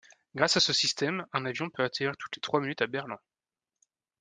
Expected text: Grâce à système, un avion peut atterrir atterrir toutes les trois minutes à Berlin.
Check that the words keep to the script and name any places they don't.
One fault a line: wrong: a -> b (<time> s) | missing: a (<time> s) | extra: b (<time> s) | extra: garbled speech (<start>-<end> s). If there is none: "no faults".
extra: ce (0.6 s)
missing: atterrir (2.2 s)